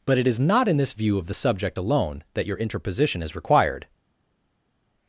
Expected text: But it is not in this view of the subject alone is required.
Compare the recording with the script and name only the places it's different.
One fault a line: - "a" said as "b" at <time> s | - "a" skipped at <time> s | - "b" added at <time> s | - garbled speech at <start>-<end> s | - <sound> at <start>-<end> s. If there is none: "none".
- "that your interposition" added at 2.4 s